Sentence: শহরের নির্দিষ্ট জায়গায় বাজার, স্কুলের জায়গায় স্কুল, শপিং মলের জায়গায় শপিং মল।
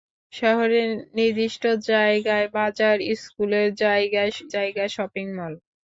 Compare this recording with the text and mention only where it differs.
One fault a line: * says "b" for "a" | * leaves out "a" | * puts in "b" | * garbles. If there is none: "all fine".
* leaves out "স্কুল শপিং মলের"